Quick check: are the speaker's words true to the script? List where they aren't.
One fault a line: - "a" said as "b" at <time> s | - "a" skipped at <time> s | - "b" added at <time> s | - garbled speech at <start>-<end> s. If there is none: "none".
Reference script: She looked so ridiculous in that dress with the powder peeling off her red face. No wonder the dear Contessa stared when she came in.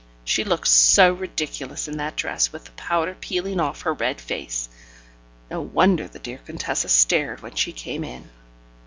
none